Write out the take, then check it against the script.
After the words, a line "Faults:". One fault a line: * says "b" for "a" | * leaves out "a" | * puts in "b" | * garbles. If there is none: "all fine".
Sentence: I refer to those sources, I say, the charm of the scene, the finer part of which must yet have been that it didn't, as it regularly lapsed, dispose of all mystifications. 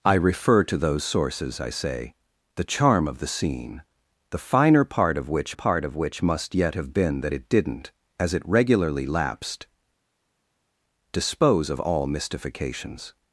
I refer to those sources, I say, the charm of the scene, the finer part of which part of which must yet have been that it didn't, as it regularly lapsed, dispose of all mystifications.
Faults:
* puts in "part of which"